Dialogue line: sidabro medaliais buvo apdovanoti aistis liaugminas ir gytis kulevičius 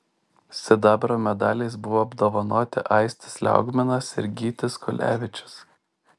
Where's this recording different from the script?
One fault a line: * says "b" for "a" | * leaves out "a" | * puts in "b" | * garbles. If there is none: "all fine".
all fine